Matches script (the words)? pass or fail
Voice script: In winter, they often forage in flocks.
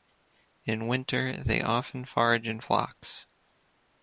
pass